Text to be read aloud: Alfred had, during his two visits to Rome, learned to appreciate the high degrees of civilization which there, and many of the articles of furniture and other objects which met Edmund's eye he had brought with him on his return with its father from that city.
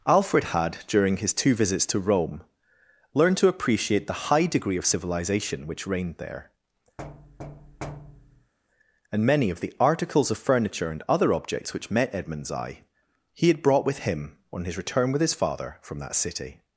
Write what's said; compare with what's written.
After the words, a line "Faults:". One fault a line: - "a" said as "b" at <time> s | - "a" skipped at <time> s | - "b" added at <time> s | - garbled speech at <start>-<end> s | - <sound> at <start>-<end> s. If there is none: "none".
Alfred had, during his two visits to Rome, learned to appreciate the high degree of civilization which reigned there, and many of the articles of furniture and other objects which met Edmund's eye he had brought with him on his return with his father from that city.
Faults:
- "degrees" said as "degree" at 4.5 s
- "reigned" added at 5.9 s
- thud at 7.0-8.5 s
- "its" said as "his" at 15.2 s